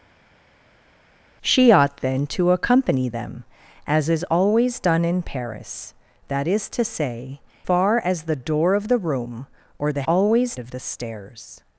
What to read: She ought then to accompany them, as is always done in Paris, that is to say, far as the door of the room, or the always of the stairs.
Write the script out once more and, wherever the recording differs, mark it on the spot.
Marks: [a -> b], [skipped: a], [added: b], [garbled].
She ought then to accompany them, as is always done in Paris, that is to say, far as the door of the room, or the always of the stairs.